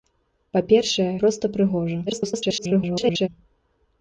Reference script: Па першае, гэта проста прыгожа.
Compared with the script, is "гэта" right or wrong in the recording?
wrong